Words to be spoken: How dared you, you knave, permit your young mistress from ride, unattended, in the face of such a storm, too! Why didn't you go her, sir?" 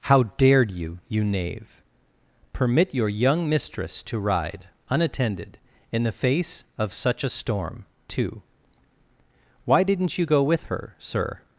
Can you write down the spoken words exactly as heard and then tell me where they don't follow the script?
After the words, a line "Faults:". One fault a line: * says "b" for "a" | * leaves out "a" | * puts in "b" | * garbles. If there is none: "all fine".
How dared you, you knave, permit your young mistress to ride, unattended, in the face of such a storm, too! Why didn't you go with her, sir?"
Faults:
* says "to" for "from"
* puts in "with"